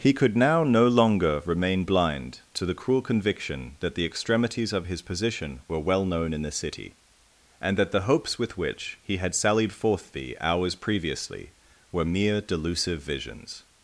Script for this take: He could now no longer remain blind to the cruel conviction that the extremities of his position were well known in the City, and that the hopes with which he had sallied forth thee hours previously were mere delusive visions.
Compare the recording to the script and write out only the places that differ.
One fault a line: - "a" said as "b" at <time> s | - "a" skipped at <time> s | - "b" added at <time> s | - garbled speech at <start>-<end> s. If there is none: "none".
none